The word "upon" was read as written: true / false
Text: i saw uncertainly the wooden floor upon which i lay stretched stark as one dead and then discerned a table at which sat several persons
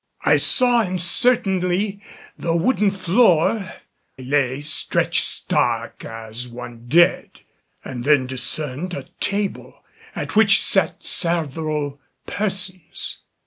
false